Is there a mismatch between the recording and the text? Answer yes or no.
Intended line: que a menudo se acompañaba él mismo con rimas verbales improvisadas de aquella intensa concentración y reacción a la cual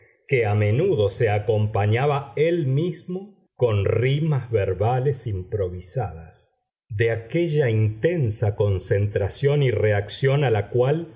no